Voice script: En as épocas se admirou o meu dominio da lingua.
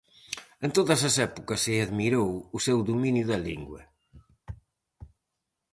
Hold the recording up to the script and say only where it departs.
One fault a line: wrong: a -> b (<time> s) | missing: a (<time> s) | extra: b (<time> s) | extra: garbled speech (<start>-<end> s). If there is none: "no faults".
extra: todas (0.8 s)
wrong: meu -> seu (2.6 s)